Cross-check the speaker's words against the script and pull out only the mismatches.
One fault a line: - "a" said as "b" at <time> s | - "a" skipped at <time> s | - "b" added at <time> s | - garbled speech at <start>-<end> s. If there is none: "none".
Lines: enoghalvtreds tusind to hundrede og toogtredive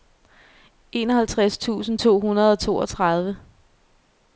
none